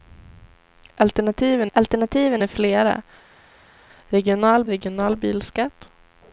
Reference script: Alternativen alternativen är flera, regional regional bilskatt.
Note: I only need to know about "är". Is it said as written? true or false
true